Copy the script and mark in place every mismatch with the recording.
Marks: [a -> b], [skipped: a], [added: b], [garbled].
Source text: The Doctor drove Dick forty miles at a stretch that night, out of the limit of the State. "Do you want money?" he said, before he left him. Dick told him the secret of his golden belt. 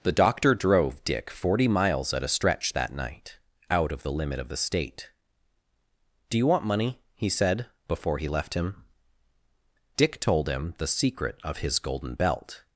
The Doctor drove Dick forty miles at a stretch that night, out of the limit of the State. "Do you want money?" he said, before he left him. Dick told him the secret of his golden belt.